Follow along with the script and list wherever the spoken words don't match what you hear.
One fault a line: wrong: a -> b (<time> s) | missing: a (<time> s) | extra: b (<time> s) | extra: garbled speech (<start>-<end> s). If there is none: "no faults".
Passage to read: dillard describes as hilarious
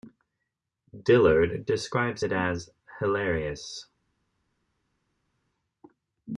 extra: it (2.2 s)